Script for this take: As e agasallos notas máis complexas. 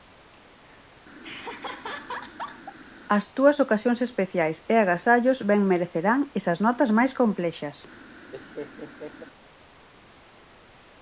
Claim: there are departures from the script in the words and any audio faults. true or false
true